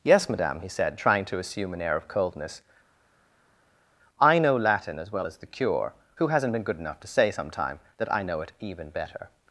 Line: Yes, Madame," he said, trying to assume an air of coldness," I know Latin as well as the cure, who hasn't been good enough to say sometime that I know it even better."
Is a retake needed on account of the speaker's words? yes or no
no